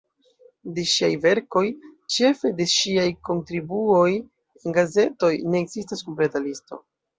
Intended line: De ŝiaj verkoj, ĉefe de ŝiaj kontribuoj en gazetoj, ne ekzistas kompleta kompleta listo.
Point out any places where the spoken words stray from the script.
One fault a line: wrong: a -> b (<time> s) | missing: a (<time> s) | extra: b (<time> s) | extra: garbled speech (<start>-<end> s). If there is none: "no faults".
missing: kompleta (6.5 s)